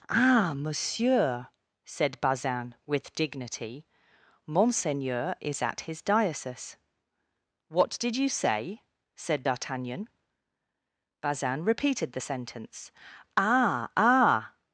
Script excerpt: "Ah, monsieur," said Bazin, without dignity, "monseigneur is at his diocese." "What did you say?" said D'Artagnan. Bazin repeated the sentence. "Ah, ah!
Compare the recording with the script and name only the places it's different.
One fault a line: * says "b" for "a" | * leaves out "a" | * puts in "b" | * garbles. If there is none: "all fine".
* says "with" for "without"